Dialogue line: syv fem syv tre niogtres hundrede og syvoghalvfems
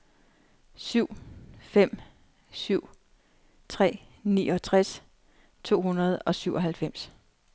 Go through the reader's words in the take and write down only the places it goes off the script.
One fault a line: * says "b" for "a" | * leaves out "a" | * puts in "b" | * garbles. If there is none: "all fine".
* puts in "to"